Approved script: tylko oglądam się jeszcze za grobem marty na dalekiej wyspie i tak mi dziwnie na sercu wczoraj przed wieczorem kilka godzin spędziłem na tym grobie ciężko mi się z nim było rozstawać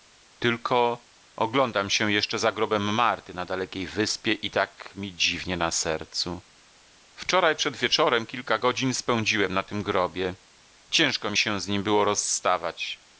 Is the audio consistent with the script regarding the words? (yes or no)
yes